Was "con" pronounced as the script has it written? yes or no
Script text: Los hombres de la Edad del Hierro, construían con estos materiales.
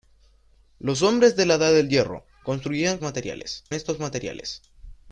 no